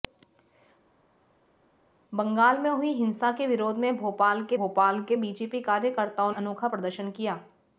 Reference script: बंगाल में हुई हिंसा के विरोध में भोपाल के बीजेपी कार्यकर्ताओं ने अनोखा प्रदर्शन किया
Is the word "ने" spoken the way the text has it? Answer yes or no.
no